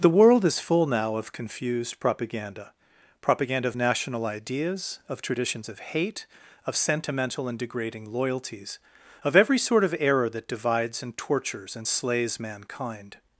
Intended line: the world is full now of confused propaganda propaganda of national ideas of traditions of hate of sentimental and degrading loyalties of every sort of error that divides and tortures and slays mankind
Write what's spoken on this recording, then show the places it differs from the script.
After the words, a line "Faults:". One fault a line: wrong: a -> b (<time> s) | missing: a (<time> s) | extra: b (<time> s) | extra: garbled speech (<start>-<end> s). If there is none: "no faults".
the world is full now of confused propaganda propaganda of national ideas of traditions of hate of sentimental and degrading loyalties of every sort of error that divides and tortures and slays mankind
Faults:
no faults